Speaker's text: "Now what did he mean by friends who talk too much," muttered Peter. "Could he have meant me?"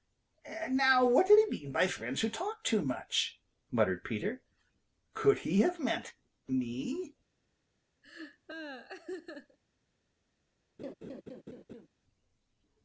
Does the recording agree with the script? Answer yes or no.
yes